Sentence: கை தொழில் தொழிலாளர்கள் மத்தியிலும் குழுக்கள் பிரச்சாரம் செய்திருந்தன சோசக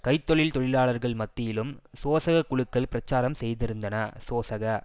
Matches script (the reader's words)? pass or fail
fail